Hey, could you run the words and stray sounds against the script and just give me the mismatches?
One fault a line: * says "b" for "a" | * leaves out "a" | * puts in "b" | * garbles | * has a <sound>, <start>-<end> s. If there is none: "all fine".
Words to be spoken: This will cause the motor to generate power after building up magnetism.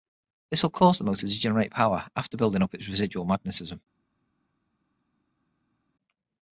* puts in "its residual"